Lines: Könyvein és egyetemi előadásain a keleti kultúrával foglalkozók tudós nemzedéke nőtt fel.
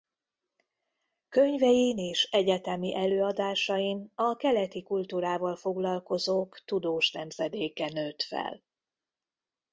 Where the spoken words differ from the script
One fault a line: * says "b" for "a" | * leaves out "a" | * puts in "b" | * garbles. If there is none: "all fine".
all fine